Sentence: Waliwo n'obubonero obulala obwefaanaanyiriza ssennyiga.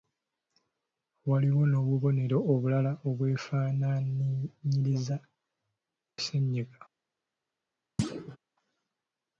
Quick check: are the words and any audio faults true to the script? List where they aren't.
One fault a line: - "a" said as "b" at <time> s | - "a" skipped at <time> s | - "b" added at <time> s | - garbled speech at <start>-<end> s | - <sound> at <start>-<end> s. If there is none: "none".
- thud at 8.0-8.4 s